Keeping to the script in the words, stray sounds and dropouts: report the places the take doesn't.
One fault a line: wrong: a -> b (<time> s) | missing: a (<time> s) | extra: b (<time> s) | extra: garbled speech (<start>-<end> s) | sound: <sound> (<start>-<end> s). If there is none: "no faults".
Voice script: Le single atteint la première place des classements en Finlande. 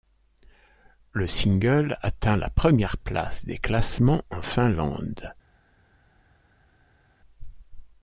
no faults